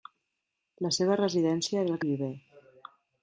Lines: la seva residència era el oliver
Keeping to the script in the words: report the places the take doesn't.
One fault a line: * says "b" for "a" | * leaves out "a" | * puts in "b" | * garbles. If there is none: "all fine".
all fine